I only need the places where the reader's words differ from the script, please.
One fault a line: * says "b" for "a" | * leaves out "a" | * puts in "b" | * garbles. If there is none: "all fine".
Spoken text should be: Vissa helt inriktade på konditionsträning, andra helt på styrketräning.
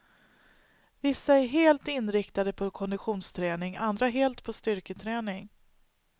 * puts in "är"